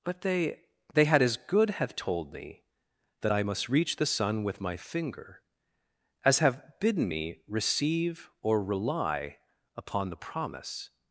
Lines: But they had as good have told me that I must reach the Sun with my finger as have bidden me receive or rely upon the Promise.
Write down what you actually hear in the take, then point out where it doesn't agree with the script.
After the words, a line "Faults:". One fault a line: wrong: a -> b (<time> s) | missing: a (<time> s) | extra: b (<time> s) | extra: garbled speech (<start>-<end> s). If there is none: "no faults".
But they they had as good have told me that I must reach the Sun with my finger as have bidden me receive or rely upon the Promise.
Faults:
extra: they (0.9 s)